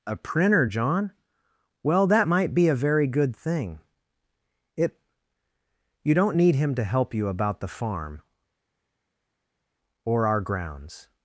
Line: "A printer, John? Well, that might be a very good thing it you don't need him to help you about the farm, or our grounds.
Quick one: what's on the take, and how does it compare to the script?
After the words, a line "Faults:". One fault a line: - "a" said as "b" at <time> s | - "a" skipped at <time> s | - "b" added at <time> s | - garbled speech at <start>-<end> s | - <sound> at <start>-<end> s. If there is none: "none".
"A printer, John? Well, that might be a very good thing it you don't need him to help you about the farm, or our grounds.
Faults:
none